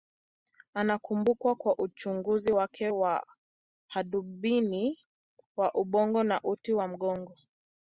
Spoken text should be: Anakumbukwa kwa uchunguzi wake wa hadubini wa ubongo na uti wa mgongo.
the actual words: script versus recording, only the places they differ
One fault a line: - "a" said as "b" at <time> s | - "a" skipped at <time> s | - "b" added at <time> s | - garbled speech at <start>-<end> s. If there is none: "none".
none